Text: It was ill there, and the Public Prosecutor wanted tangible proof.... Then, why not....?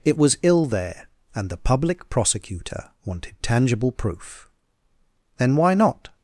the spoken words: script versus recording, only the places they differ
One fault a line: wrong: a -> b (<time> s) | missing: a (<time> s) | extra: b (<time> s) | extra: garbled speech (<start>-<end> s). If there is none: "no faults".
no faults